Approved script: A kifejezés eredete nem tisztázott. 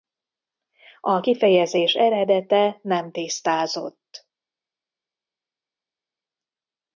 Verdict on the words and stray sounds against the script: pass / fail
pass